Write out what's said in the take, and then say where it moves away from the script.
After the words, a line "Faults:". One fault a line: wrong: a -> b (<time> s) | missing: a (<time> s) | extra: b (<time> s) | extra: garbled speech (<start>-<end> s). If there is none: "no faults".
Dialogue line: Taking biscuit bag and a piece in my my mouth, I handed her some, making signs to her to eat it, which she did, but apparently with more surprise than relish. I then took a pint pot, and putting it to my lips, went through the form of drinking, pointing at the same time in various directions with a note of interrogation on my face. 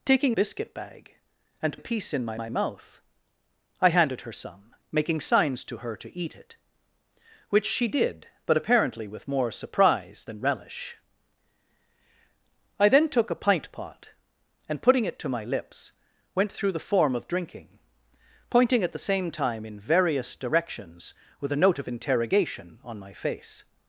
Taking biscuit bag and a piece in my my mouth, I handed her some, making signs to her to eat it, which she did, but apparently with more surprise than relish. I then took a pint pot, and putting it to my lips, went through the form of drinking, pointing at the same time in various directions with a note of interrogation on my face.
Faults:
no faults